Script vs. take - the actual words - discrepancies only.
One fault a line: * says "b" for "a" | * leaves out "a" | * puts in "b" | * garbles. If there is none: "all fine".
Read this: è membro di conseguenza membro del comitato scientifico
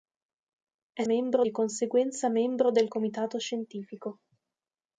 all fine